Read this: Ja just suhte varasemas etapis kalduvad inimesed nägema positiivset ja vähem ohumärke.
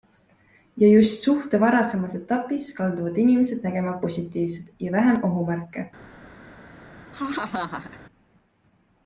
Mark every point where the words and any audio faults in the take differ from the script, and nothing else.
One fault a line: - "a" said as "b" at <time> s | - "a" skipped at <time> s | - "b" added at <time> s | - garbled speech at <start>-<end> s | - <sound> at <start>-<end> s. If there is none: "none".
- laugh at 7.1-8.0 s